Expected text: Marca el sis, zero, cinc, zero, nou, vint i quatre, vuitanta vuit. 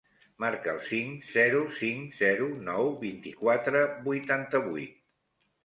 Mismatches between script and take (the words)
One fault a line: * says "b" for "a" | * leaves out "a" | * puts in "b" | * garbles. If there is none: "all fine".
* says "cinc" for "sis"